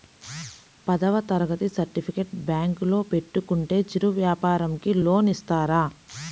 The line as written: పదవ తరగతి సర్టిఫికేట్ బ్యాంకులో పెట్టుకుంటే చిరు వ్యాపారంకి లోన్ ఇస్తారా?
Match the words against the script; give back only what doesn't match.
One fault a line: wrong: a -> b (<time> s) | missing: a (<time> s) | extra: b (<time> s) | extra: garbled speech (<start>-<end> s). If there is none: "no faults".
no faults